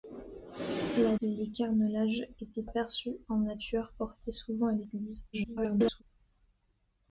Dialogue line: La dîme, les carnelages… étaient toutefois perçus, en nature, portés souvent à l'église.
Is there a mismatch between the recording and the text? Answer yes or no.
yes